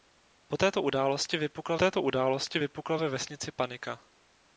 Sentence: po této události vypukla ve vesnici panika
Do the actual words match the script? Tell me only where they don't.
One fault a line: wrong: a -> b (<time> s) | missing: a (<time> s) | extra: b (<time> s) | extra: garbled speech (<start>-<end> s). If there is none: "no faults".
extra: této události vypukla (1.8 s)